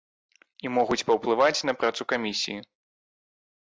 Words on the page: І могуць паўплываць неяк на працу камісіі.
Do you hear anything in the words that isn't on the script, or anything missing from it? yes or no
yes